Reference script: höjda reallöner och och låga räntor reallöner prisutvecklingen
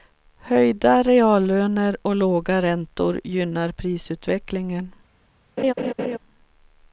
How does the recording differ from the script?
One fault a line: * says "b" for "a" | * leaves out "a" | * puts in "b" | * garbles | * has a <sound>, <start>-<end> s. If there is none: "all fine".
* leaves out "och"
* says "gynnar" for "reallöner"
* has a laugh, 5.6-6.2 s